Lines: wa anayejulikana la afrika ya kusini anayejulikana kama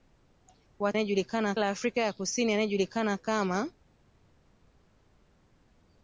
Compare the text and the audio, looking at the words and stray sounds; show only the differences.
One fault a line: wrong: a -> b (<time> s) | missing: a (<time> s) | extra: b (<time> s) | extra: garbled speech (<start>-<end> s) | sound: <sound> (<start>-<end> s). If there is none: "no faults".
no faults